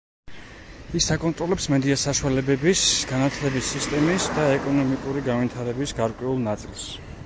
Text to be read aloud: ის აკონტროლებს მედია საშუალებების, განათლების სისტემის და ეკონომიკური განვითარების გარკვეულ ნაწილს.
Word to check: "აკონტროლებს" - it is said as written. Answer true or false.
true